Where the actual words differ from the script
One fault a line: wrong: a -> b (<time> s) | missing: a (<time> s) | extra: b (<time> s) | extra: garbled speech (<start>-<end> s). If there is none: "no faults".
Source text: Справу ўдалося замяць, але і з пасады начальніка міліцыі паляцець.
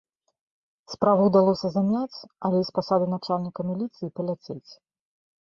no faults